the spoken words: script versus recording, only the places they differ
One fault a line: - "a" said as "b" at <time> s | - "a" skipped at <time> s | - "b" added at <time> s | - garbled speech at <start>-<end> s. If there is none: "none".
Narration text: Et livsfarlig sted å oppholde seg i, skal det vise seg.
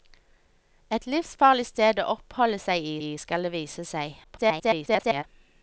- "i" added at 3.0 s
- garbled speech at 4.2-5.2 s